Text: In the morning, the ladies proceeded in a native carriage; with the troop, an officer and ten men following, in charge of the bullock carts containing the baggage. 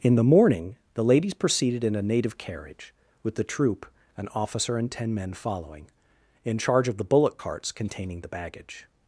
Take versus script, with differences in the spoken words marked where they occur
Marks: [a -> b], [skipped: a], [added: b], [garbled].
In the morning, the ladies proceeded in a native carriage; with the troop, an officer and ten men following, in charge of the bullock carts containing the baggage.